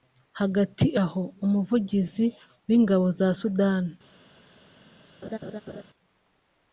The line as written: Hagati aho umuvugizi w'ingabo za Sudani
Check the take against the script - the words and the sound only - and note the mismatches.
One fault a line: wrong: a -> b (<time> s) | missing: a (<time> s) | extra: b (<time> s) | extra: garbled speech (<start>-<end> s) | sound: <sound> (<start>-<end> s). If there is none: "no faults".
sound: laugh (5.2-5.8 s)